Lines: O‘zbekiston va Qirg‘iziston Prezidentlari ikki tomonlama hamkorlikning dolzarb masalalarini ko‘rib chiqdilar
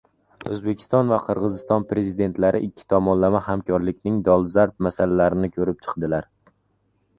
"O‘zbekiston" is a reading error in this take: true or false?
false